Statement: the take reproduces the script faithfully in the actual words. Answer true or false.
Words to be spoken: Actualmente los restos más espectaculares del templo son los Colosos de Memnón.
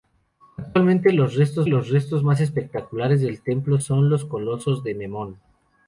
false